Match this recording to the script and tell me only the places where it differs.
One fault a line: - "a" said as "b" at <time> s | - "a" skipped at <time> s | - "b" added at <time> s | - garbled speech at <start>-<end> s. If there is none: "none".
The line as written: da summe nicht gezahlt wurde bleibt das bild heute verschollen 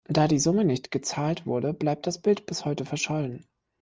- "die" added at 0.3 s
- "bis" added at 2.5 s